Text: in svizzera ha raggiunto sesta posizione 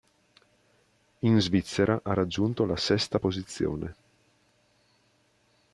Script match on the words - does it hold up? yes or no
no